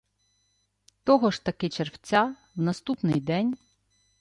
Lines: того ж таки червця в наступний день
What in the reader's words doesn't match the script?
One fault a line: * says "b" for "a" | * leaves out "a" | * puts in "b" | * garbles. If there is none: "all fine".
all fine